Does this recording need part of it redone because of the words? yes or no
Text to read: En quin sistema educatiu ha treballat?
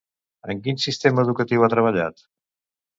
no